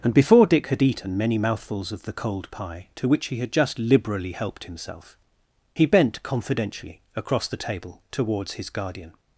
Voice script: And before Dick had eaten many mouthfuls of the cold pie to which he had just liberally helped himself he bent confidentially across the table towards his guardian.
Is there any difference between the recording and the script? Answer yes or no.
no